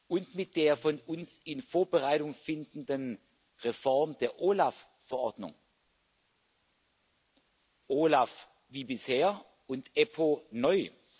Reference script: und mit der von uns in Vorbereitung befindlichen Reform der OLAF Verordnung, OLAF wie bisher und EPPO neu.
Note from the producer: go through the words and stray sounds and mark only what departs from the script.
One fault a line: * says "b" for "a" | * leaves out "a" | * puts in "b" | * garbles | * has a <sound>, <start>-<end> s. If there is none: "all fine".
all fine